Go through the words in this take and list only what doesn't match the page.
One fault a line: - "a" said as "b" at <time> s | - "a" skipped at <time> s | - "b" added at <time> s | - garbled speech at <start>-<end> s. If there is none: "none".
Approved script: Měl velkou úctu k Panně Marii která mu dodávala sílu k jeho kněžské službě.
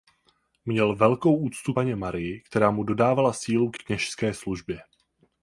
- "k" skipped at 1.7 s
- "jeho" skipped at 3.8 s